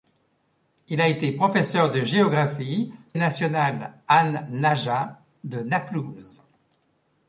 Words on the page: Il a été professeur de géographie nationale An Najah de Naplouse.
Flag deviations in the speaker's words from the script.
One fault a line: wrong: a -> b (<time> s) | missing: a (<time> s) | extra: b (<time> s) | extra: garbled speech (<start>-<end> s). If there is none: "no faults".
no faults